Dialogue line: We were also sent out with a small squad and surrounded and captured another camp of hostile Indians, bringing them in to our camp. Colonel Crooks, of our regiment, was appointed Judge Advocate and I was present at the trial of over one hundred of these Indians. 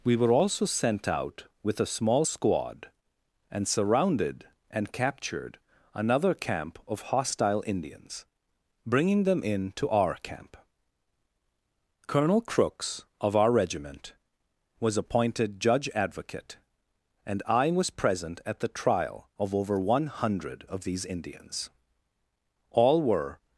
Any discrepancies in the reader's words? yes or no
yes